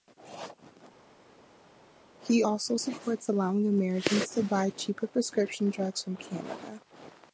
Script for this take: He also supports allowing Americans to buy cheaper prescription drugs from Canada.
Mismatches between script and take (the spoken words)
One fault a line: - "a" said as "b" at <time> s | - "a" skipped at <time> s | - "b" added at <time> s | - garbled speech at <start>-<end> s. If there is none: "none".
none